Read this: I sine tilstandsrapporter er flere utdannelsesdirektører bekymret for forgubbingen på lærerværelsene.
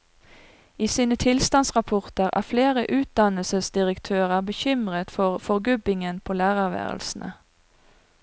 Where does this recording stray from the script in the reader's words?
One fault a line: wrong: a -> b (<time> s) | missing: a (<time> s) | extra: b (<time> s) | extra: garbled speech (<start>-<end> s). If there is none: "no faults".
no faults